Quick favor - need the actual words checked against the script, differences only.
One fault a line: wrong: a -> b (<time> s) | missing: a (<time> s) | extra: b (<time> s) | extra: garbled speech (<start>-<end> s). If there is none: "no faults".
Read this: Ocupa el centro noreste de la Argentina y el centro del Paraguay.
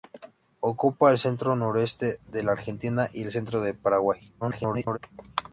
extra: garbled speech (4.4-5.0 s)